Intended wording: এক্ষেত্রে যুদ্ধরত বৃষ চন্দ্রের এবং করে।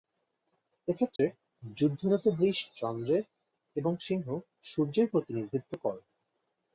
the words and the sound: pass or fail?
fail